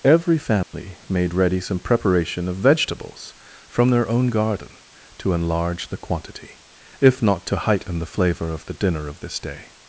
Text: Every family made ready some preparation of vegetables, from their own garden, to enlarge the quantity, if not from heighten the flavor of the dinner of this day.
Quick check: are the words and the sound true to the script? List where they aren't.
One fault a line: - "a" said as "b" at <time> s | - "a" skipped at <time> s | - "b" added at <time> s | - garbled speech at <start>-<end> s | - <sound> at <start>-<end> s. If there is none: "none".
- dropout at 0.6-0.7 s
- "from" said as "to" at 7.5 s